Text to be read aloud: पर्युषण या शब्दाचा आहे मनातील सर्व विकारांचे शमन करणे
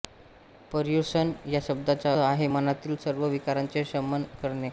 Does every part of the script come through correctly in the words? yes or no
yes